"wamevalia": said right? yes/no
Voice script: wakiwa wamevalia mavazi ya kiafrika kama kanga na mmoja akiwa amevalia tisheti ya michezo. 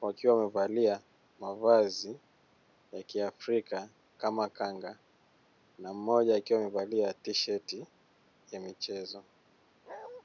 yes